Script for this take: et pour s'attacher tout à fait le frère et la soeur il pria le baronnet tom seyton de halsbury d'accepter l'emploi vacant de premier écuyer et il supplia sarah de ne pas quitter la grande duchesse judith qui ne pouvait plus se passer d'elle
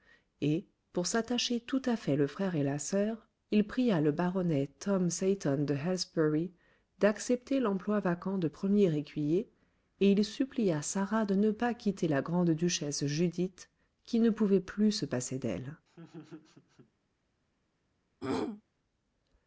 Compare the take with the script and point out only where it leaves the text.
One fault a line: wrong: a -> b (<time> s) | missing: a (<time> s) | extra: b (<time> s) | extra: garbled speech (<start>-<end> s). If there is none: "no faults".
no faults